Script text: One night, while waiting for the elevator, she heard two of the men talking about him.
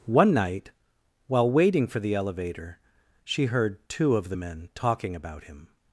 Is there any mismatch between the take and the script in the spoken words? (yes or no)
no